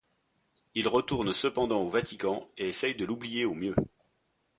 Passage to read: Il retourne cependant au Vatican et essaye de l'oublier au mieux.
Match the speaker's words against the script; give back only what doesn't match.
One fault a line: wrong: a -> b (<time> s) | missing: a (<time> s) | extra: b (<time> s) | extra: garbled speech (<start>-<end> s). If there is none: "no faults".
no faults